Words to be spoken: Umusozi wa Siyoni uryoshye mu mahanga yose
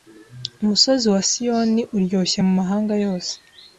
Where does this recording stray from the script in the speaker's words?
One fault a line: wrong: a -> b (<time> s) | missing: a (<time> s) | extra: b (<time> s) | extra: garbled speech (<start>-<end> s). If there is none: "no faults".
no faults